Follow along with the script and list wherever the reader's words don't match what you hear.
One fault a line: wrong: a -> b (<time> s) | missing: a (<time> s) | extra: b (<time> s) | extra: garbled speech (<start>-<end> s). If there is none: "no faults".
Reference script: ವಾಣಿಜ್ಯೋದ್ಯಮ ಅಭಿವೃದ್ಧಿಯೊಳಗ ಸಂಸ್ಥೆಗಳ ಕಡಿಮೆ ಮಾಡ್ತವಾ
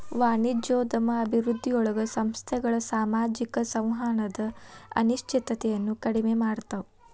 extra: ಸಾಮಾಜಿಕ ಸಂವಹನದ ಅನಿಶ್ಚಿತತೆಯನ್ನ (2.9 s)